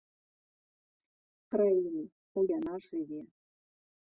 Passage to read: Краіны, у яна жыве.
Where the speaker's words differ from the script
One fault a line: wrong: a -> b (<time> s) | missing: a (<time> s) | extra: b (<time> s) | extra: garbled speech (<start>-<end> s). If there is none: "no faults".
no faults